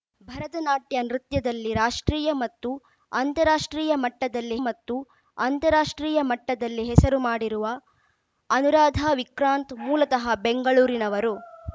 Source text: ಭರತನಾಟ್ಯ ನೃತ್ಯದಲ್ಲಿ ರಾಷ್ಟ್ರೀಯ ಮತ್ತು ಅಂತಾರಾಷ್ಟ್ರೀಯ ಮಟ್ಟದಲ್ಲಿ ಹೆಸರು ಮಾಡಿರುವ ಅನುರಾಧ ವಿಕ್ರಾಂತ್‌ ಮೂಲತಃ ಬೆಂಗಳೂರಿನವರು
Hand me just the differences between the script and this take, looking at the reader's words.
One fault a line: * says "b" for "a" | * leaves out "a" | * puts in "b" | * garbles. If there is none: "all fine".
* puts in "ಮತ್ತು ಅಂತಾರಾಷ್ಟ್ರೀಯ ಮಟ್ಟದಲ್ಲಿ"